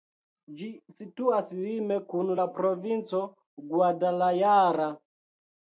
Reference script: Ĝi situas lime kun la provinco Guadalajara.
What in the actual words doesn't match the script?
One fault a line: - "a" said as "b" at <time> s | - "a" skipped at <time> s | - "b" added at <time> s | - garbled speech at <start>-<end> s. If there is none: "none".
none